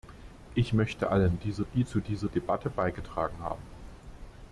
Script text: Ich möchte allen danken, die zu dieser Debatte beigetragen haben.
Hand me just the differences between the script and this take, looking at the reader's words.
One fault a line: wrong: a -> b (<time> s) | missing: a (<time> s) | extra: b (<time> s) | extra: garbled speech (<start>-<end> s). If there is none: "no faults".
wrong: danken -> dieser (1.4 s)